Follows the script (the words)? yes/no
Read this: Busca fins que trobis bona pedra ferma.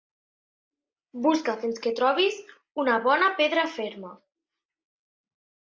no